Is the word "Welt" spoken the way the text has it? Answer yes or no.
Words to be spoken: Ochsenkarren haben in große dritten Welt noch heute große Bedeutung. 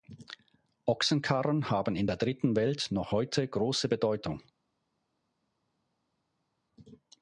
yes